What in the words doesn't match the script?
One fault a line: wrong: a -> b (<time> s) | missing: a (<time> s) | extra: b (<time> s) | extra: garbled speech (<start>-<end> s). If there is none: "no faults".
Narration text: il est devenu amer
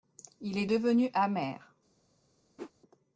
no faults